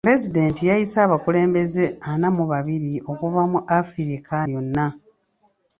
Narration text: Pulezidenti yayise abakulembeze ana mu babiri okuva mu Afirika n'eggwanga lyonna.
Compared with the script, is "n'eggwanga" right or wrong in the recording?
wrong